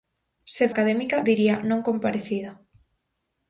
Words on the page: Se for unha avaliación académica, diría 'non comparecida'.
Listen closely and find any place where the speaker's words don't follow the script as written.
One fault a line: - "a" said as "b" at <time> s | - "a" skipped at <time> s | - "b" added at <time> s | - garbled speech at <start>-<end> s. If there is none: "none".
- "for unha avaliación" skipped at 0.7 s